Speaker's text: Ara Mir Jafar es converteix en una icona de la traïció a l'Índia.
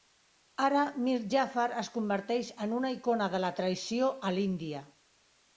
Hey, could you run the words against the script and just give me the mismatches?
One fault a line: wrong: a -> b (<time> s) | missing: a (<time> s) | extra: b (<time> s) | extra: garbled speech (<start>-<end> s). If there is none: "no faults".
no faults